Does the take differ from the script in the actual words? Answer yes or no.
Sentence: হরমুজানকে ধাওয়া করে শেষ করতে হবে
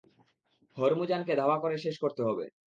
no